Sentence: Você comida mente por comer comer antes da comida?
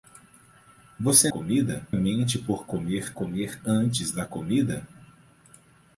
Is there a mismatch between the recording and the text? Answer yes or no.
no